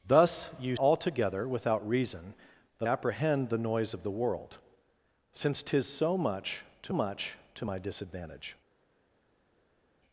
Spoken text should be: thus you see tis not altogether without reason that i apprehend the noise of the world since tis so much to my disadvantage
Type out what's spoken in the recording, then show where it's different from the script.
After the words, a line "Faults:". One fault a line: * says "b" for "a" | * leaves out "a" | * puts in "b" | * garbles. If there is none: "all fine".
thus you altogether without reason that apprehend the noise of the world since tis so much to much to my disadvantage
Faults:
* leaves out "see tis not"
* leaves out "i"
* puts in "much to"